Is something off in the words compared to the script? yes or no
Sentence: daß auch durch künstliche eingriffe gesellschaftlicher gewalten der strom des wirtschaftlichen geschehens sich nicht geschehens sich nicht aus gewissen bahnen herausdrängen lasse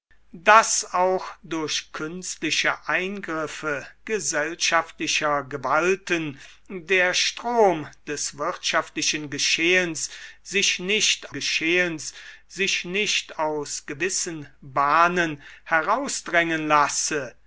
no